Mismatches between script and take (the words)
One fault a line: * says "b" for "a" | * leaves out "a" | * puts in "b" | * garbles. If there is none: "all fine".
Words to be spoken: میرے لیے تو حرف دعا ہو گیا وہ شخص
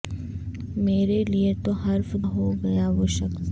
* leaves out "دعا"